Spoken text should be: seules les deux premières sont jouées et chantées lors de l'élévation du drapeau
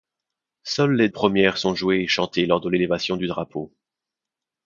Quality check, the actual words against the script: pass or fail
fail